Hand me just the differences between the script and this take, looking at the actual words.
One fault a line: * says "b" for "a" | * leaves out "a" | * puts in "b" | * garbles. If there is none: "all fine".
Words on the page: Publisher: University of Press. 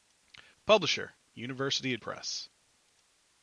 all fine